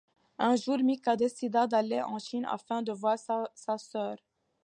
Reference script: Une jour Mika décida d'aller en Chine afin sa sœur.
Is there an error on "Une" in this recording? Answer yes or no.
yes